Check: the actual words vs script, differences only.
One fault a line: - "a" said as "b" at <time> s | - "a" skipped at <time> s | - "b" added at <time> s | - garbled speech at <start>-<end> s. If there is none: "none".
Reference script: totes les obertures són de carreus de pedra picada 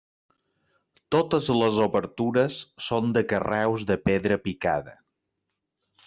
none